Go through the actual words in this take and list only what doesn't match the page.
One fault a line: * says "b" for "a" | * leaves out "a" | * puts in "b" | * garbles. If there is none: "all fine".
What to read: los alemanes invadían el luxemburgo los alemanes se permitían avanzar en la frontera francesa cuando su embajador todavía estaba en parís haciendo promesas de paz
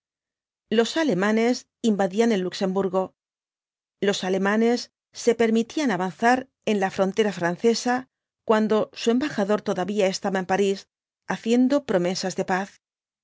all fine